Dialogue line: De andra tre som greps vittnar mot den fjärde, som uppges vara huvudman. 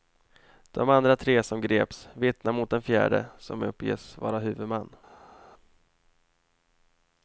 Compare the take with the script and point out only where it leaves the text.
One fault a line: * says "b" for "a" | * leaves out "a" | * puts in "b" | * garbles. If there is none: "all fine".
all fine